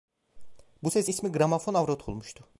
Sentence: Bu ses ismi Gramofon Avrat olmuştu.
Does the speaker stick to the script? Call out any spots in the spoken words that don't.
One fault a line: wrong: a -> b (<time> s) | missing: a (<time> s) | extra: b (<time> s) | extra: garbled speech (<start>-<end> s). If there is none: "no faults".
no faults